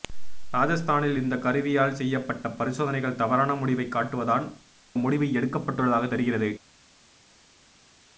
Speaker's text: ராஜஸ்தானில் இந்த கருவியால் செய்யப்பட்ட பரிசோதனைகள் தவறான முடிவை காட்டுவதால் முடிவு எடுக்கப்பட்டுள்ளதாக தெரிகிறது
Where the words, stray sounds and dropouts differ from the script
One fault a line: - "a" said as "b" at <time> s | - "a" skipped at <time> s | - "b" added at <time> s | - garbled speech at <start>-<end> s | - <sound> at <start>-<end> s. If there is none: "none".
none